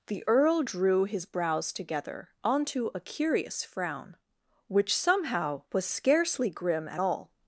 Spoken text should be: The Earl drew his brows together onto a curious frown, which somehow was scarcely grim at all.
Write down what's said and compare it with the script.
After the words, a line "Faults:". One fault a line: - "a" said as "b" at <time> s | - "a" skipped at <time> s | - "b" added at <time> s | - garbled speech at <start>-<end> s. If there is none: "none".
The Earl drew his brows together onto a curious frown, which somehow was scarcely grim at all.
Faults:
none